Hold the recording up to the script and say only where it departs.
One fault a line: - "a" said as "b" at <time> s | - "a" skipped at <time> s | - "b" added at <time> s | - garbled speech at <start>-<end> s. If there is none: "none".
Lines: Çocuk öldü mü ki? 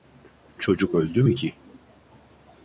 none